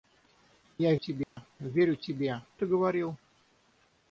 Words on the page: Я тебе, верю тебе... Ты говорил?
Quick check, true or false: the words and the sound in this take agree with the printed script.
false